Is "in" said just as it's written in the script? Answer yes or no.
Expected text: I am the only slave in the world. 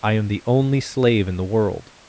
yes